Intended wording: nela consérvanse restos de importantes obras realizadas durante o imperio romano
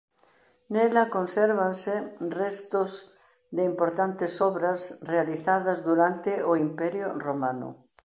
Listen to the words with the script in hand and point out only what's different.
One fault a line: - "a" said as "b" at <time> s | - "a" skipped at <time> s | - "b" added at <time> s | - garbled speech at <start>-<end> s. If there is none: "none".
none